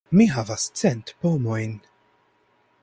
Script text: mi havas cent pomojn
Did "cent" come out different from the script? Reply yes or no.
no